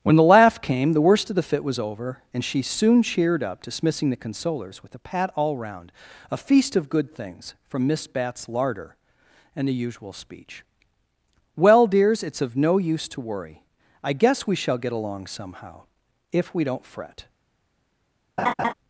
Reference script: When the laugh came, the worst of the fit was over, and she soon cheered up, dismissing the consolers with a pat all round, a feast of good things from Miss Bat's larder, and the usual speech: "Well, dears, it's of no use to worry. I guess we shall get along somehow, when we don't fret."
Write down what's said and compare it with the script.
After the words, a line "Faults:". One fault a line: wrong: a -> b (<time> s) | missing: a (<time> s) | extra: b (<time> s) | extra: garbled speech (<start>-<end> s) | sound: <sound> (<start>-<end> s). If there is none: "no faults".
When the laugh came, the worst of the fit was over, and she soon cheered up, dismissing the consolers with a pat all round, a feast of good things from Miss Bat's larder, and the usual speech: "Well, dears, it's of no use to worry. I guess we shall get along somehow, if we don't fret."
Faults:
wrong: when -> if (16.3 s)
sound: laugh (18.4-18.7 s)